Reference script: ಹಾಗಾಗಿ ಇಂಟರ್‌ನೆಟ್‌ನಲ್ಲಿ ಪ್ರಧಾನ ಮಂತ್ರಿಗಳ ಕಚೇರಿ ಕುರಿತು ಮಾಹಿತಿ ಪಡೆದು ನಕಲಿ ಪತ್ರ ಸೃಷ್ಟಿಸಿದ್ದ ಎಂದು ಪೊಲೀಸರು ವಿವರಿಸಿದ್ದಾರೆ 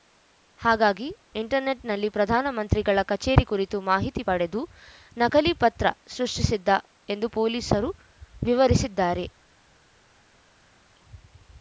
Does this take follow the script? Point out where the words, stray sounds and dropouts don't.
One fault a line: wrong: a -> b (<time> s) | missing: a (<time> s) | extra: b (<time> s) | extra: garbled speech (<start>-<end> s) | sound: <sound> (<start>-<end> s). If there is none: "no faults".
no faults